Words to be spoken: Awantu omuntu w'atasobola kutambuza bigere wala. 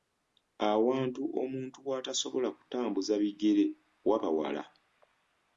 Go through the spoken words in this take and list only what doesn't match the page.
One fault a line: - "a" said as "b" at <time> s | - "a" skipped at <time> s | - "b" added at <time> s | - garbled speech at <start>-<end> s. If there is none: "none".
- "waba" added at 4.1 s